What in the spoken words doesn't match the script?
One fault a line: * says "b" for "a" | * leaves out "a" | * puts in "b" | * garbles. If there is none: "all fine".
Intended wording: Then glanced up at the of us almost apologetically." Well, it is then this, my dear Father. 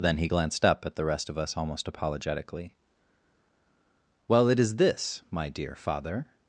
* puts in "he"
* puts in "rest"
* leaves out "then"